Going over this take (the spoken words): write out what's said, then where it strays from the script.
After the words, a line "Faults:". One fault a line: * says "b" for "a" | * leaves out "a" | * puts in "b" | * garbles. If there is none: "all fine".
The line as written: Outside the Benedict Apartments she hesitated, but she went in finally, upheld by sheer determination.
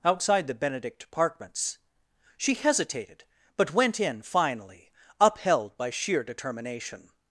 Outside the Benedict Apartments she hesitated, but went in finally, upheld by sheer determination.
Faults:
* leaves out "she"